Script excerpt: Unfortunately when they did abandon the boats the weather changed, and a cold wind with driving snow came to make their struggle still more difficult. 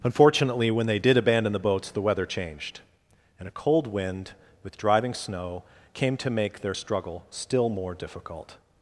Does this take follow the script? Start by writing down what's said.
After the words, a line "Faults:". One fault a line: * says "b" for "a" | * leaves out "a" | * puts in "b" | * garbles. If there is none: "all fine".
Unfortunately when they did abandon the boats the weather changed, and a cold wind with driving snow came to make their struggle still more difficult.
Faults:
all fine